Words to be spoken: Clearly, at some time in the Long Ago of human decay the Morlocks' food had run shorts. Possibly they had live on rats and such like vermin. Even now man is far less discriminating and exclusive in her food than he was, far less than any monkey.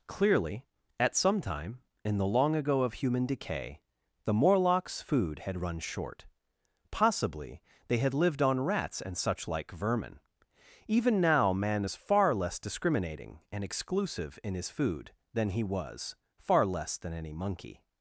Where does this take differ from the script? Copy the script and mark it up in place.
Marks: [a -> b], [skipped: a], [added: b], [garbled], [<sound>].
Clearly, at some time in the Long Ago of human decay the Morlocks' food had run [shorts. -> short] Possibly they had [live -> lived] on rats and such like vermin. Even now man is far less discriminating and exclusive in [her -> his] food than he was, far less than any monkey.